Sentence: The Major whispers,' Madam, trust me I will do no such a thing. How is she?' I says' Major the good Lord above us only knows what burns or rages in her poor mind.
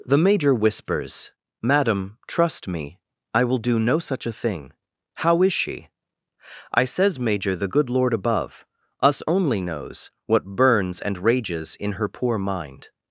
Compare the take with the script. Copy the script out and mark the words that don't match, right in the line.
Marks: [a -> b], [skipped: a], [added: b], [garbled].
The Major whispers,' Madam, trust me I will do no such a thing. How is she?' I says' Major the good Lord above us only knows what burns [or -> and] rages in her poor mind.